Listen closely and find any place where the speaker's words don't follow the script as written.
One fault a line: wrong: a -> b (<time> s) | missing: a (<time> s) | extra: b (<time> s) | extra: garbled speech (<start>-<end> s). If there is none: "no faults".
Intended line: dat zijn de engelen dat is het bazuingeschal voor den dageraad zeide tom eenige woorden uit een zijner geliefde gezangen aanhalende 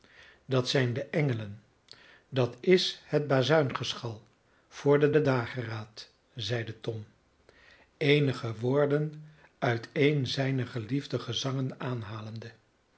extra: den (5.1 s)